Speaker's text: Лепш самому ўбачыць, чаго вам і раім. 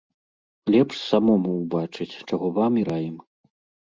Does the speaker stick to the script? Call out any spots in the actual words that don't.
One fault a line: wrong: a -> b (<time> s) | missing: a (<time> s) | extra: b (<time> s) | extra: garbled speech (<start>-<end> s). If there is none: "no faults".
no faults